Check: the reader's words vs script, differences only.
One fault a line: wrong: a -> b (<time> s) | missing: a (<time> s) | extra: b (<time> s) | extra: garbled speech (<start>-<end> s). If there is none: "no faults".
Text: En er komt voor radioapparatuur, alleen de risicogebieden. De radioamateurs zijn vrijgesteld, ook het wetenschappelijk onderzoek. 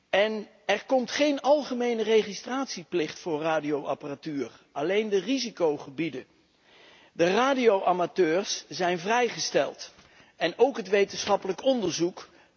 extra: geen algemene registratieplicht (1.1 s)
extra: en (10.4 s)